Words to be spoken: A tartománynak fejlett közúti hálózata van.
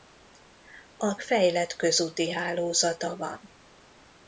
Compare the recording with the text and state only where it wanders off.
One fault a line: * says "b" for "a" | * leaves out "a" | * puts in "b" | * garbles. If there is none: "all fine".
* leaves out "tartománynak"